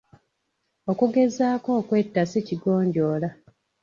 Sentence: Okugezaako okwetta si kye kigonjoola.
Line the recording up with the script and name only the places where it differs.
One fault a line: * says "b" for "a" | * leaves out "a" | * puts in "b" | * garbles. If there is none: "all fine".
* leaves out "kye"